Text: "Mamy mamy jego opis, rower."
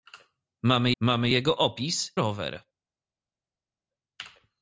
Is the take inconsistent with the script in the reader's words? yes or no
no